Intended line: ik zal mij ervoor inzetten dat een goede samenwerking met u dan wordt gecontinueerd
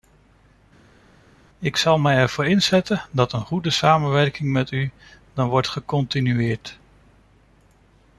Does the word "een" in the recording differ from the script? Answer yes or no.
no